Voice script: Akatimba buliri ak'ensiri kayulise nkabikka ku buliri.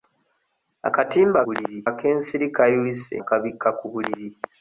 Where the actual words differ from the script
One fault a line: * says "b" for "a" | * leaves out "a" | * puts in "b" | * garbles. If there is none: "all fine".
all fine